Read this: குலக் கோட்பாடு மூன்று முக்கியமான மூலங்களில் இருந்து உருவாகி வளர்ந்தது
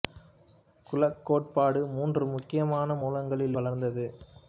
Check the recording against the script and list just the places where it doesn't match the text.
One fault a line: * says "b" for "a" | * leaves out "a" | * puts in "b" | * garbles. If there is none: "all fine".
* leaves out "இருந்து உருவாகி"